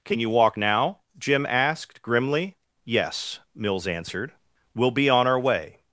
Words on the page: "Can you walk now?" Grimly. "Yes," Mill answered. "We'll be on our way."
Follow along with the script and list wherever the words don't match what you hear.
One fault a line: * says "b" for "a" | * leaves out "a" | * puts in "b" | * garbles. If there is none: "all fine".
* puts in "Jim asked"
* says "Mills" for "Mill"